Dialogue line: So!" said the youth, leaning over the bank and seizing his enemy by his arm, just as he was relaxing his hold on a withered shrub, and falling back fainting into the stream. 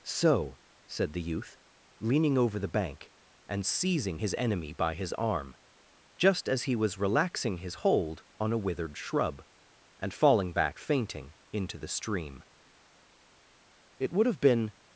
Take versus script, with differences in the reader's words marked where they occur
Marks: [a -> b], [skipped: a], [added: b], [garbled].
So!" said the youth, leaning over the bank and seizing his enemy by his arm, just as he was relaxing his hold on a withered shrub, and falling back fainting into the stream. [added: It would have been]